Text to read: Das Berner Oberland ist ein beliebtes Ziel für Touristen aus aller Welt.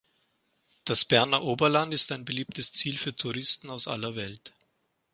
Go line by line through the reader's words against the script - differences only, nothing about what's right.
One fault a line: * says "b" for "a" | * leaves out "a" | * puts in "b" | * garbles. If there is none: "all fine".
all fine